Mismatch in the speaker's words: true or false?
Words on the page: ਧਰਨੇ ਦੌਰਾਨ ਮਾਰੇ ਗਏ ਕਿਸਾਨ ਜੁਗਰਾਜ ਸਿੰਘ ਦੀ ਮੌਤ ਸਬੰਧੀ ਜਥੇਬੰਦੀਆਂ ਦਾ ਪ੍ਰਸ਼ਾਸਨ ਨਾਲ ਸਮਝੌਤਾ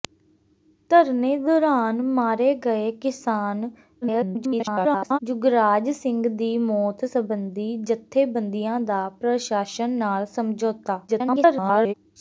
true